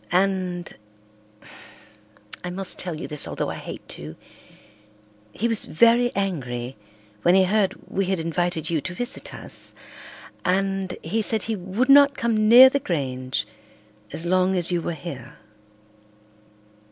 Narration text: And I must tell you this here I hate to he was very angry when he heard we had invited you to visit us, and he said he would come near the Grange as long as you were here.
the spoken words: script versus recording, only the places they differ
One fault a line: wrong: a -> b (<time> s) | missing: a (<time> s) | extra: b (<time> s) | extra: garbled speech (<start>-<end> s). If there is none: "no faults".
wrong: here -> although (3.3 s)
extra: not (11.9 s)